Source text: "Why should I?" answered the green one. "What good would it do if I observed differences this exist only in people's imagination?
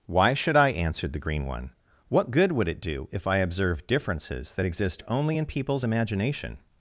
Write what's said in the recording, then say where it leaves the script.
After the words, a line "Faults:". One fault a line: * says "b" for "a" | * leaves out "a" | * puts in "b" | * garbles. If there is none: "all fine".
"Why should I?" answered the green one. "What good would it do if I observed differences that exist only in people's imagination?
Faults:
* says "that" for "this"